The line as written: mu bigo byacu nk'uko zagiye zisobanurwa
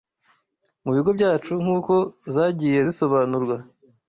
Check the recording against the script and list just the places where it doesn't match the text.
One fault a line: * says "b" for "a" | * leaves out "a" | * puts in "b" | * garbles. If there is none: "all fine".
all fine